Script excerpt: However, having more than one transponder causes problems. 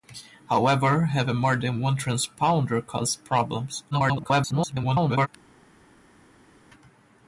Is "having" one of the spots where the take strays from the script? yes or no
no